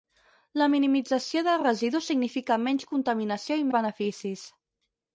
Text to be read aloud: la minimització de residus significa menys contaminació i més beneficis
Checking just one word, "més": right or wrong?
wrong